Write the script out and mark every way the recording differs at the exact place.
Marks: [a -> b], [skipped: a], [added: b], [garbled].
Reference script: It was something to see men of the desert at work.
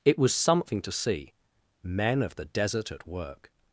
It was something to see men of the desert at work.